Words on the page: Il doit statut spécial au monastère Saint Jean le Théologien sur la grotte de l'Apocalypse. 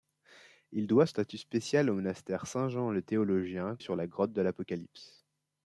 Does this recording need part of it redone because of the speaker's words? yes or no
no